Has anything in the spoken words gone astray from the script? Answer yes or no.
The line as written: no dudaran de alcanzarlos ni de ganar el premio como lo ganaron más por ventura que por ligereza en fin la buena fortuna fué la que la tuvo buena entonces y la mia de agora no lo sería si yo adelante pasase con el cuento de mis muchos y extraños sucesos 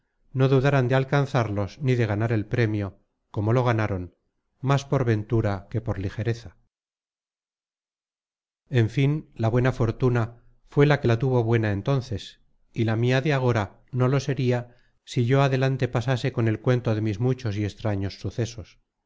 no